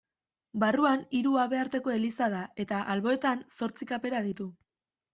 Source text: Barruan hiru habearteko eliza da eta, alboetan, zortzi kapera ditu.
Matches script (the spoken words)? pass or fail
pass